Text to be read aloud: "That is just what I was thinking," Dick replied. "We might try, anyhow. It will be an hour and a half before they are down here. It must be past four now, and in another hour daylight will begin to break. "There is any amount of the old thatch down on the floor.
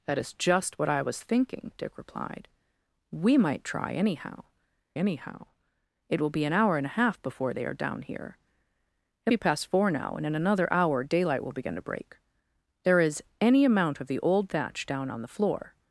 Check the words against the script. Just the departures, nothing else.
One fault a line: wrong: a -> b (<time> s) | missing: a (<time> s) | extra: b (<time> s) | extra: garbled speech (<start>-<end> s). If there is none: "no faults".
extra: anyhow (4.9 s)
missing: must (9.3 s)